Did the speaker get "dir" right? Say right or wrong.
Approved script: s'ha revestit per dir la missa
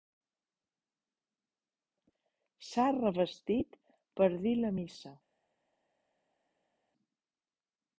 right